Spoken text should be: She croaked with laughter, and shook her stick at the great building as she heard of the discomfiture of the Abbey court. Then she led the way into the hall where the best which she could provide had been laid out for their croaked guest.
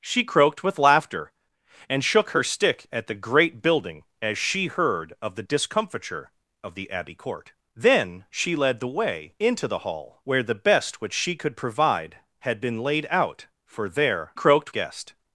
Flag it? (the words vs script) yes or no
no